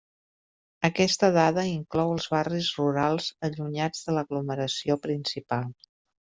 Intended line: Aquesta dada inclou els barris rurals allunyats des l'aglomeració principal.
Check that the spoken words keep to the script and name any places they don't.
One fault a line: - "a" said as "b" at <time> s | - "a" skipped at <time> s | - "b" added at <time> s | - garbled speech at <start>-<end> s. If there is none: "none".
- "des" said as "de" at 4.1 s